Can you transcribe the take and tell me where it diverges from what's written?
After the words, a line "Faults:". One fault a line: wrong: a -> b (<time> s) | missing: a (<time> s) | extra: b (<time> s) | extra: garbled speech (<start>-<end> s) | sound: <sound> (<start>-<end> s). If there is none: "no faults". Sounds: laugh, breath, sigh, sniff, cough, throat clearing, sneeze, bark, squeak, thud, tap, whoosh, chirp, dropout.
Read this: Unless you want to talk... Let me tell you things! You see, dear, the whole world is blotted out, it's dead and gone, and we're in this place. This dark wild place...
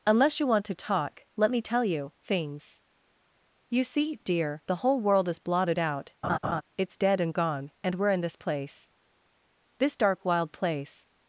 Unless you want to talk... Let me tell you things! You see, dear, the whole world is blotted out, it's dead and gone, and we're in this place. This dark wild place...
Faults:
sound: laugh (6.2-6.6 s)